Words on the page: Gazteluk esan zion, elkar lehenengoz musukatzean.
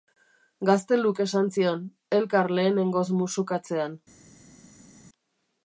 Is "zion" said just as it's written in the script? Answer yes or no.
yes